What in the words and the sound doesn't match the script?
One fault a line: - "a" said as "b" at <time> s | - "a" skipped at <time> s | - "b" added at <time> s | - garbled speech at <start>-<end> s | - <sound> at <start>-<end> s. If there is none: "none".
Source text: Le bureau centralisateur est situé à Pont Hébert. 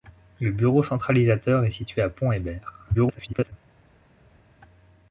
- garbled speech at 2.9-3.5 s